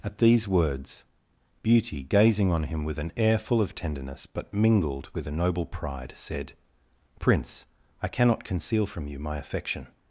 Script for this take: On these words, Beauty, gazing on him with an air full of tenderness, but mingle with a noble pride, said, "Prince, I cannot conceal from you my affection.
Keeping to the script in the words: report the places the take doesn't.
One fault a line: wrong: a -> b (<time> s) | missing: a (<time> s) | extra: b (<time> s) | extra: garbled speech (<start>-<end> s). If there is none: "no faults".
wrong: On -> At (0.0 s)
wrong: mingle -> mingled (4.5 s)